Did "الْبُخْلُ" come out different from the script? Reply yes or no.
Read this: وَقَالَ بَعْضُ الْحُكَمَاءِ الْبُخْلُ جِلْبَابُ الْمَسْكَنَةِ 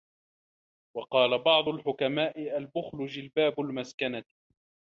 no